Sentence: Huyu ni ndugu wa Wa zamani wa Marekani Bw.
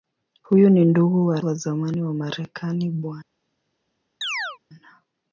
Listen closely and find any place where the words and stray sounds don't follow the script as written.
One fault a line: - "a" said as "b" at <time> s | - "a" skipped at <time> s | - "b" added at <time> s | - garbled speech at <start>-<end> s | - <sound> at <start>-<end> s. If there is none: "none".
- chirp at 4.2-4.6 s